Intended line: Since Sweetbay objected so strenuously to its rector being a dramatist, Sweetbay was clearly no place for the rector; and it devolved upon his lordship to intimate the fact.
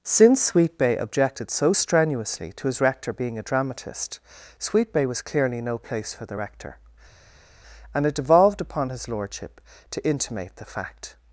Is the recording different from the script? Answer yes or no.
yes